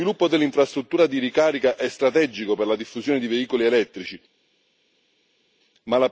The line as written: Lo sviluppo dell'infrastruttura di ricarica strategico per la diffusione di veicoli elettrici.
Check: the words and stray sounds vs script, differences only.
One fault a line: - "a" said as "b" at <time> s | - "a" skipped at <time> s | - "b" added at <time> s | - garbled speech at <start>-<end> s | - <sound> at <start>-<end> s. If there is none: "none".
- "è" added at 1.8 s